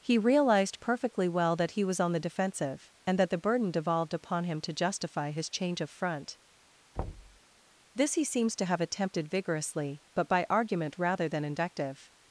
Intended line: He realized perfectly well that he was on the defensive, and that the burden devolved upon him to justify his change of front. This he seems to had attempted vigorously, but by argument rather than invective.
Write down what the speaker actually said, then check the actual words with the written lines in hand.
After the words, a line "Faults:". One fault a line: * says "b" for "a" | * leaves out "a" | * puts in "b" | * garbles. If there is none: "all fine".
He realized perfectly well that he was on the defensive, and that the burden devolved upon him to justify his change of front. This he seems to have attempted vigorously, but by argument rather than invective.
Faults:
* says "have" for "had"